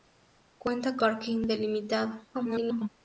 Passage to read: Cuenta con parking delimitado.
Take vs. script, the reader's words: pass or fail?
fail